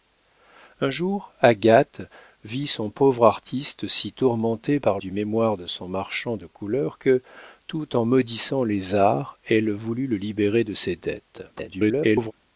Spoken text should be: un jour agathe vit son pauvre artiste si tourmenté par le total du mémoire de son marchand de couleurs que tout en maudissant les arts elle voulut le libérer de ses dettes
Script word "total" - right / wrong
wrong